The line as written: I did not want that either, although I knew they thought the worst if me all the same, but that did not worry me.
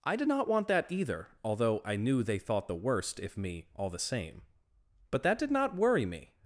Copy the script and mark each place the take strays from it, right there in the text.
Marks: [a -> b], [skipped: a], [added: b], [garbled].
I did not want that either, although I knew they thought the worst if me all the same, but that did not worry me.